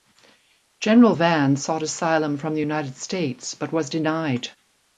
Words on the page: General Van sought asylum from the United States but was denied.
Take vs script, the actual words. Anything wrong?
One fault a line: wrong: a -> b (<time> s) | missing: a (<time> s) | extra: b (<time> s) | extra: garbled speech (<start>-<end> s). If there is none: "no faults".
no faults